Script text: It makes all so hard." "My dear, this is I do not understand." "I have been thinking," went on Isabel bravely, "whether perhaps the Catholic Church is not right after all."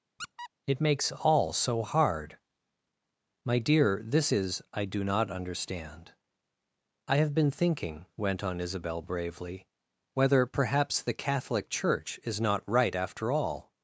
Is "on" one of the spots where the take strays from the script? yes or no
no